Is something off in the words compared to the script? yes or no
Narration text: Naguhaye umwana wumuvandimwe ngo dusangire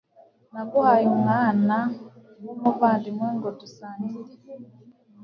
no